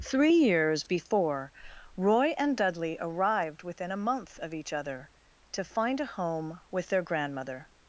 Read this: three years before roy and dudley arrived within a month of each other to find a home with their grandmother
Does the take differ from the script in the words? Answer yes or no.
no